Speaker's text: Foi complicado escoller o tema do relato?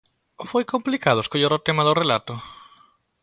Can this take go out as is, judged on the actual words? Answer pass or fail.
pass